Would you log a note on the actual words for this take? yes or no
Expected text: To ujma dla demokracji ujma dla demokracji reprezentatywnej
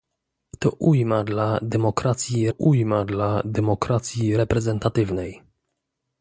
no